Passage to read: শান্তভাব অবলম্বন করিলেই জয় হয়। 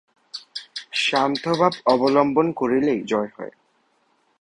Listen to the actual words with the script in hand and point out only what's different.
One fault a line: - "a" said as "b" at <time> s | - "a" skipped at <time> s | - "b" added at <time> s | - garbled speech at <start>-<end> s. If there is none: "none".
none